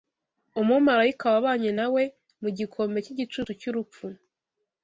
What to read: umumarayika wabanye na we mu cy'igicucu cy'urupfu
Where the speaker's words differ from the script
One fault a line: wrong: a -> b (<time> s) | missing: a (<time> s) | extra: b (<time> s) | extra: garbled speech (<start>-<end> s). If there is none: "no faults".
extra: gikombe (2.6 s)